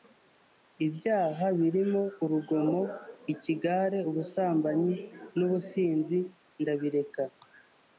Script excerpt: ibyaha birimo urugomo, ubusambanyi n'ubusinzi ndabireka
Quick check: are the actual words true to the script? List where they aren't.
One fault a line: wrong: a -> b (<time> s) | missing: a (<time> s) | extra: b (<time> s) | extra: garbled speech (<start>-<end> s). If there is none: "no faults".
extra: ikigare (3.3 s)